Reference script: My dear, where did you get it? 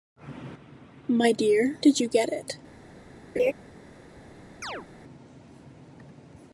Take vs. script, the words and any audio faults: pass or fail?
fail